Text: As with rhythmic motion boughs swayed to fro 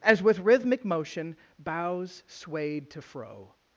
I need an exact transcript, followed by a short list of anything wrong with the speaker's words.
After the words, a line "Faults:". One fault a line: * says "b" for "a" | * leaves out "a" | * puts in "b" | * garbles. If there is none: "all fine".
As with rhythmic motion boughs swayed to fro
Faults:
all fine